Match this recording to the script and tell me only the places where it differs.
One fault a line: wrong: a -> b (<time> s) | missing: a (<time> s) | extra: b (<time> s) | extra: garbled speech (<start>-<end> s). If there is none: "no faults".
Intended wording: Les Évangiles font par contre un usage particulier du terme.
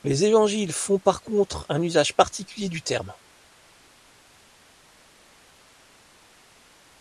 no faults